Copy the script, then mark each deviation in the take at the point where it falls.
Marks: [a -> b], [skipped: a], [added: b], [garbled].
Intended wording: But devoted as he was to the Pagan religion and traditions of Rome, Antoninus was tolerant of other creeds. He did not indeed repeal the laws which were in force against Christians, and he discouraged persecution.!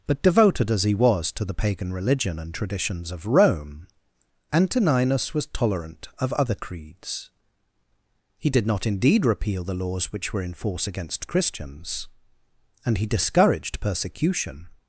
But devoted as he was to the Pagan religion and traditions of Rome, Antoninus was tolerant of other creeds. He did not indeed repeal the laws which were in force against Christians, and he discouraged persecution.!